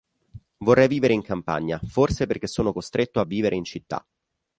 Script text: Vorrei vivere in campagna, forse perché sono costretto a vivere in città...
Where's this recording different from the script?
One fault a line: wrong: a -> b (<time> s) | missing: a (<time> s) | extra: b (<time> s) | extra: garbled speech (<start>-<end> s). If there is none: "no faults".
no faults